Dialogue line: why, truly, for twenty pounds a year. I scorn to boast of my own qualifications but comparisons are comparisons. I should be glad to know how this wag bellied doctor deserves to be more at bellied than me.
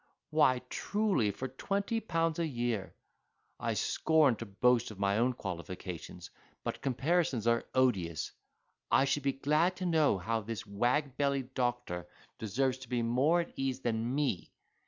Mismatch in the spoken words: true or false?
true